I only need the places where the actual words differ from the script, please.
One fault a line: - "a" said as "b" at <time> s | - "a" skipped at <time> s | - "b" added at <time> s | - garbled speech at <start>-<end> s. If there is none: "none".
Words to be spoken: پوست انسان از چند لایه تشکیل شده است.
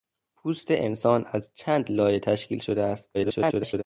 - garbled speech at 3.1-3.8 s